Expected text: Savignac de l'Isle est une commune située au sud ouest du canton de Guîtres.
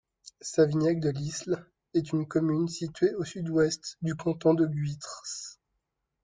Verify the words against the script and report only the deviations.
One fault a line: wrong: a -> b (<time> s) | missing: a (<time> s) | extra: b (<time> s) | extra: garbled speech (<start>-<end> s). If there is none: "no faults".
no faults